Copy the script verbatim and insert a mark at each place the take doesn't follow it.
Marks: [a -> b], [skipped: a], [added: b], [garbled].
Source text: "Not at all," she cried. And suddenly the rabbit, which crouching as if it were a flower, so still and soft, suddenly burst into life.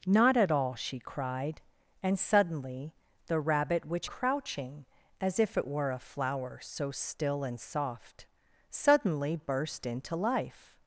"Not at all," she cried. And suddenly the rabbit, which crouching as if it were a flower, so still and soft, suddenly burst into life.